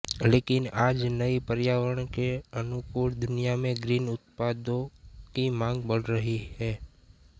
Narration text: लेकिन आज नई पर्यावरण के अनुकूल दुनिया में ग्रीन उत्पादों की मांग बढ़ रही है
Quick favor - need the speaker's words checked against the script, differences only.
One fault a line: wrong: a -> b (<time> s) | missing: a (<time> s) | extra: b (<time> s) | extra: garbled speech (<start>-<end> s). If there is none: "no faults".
no faults